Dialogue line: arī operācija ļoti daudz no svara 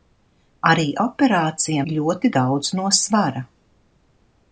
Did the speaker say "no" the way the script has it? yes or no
yes